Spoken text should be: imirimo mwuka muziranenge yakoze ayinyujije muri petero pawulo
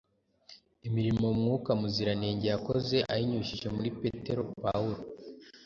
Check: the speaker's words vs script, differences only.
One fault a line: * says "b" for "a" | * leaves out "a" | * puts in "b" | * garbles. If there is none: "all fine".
all fine